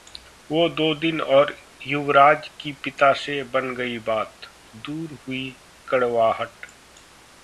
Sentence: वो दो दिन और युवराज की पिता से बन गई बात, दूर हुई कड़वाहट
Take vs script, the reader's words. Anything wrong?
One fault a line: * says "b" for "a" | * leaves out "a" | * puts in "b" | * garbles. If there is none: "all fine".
all fine